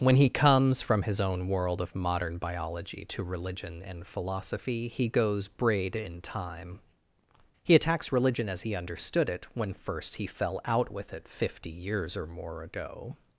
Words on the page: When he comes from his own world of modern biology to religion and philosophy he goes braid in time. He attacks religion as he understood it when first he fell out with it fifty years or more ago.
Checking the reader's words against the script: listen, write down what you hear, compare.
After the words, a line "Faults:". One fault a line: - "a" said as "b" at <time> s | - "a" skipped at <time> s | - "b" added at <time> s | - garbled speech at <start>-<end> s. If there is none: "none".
When he comes from his own world of modern biology to religion and philosophy he goes braid in time. He attacks religion as he understood it when first he fell out with it fifty years or more ago.
Faults:
none